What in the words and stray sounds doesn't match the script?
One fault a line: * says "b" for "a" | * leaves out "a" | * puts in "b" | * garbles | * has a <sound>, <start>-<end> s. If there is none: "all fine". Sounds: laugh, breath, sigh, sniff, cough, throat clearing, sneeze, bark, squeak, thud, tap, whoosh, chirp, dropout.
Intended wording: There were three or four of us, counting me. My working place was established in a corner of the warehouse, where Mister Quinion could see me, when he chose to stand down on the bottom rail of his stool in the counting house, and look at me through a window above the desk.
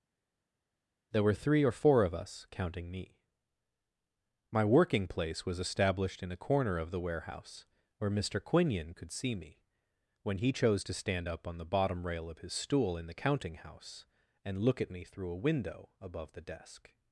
* says "up" for "down"